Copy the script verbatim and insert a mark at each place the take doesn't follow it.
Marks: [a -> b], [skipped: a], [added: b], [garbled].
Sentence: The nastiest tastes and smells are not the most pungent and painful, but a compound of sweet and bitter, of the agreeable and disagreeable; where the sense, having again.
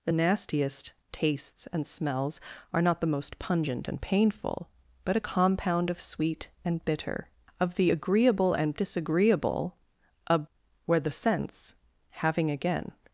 The nastiest tastes and smells are not the most pungent and painful, but a compound of sweet and bitter, of the agreeable and disagreeable; [added: a] where the sense, having again.